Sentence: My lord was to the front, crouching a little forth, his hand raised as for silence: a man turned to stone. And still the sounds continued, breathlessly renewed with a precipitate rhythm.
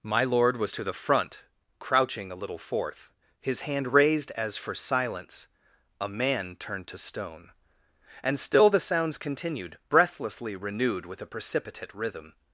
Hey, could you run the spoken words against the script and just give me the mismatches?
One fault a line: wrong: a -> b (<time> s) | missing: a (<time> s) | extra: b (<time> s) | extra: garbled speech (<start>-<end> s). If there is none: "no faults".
no faults